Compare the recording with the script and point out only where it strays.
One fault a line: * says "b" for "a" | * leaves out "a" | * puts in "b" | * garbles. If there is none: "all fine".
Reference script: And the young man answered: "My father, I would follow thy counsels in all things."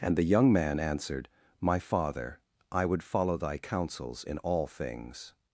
all fine